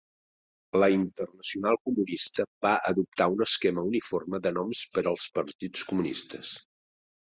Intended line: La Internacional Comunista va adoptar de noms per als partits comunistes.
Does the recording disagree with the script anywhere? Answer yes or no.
yes